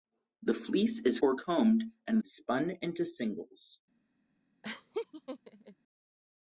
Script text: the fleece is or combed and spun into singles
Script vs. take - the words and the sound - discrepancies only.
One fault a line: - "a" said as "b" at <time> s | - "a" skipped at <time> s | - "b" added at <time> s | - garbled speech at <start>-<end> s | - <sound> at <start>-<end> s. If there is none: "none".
- laugh at 4.6-5.8 s